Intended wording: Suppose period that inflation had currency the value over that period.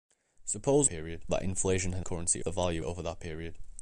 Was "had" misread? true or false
false